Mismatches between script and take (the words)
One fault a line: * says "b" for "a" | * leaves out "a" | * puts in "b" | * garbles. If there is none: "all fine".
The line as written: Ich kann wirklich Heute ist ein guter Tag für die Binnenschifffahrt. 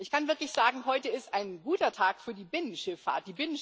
* puts in "sagen"